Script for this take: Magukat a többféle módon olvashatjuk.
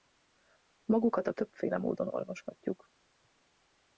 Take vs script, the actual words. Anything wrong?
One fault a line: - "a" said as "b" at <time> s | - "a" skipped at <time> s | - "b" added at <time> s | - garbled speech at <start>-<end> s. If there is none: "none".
none